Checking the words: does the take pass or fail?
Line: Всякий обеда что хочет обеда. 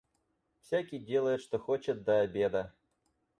fail